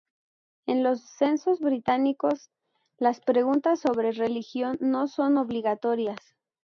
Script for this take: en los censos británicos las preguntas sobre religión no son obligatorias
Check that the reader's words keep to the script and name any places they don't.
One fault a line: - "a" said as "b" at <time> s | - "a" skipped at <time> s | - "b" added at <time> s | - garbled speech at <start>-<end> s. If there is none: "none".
none